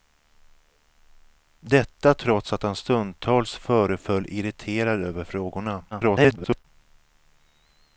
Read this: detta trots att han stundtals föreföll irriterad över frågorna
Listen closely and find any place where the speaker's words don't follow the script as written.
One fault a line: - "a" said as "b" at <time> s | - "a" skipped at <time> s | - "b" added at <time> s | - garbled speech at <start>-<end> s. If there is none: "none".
- garbled speech at 5.9-6.6 s